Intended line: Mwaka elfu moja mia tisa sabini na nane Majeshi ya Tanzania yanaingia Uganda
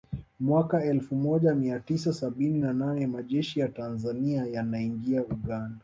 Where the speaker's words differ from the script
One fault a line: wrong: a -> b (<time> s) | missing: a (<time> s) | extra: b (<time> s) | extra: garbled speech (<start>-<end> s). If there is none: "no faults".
no faults